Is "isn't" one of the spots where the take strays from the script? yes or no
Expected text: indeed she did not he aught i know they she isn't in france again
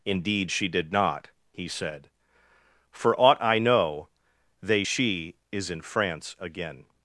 yes